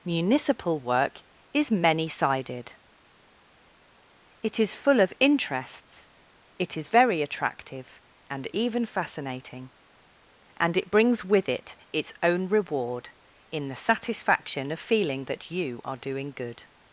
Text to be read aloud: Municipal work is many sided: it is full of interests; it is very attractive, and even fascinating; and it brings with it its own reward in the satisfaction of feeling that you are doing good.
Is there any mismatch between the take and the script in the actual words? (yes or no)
no